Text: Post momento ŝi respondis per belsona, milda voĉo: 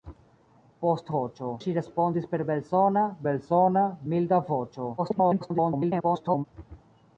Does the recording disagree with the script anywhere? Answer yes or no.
yes